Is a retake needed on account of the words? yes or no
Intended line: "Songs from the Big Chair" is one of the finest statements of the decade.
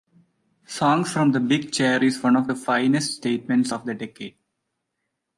no